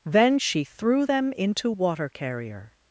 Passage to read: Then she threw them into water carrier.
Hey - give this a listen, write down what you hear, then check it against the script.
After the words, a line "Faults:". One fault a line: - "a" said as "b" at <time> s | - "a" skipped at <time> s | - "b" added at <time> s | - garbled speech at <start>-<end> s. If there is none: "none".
Then she threw them into water carrier.
Faults:
none